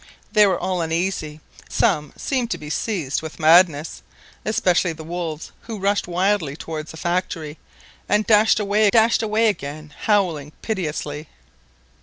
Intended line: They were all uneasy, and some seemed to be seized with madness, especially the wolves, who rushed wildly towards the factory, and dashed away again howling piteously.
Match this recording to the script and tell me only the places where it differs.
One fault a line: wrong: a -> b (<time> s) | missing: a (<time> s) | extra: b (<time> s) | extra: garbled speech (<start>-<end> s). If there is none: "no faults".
missing: and (1.4 s)
extra: dashed away (8.9 s)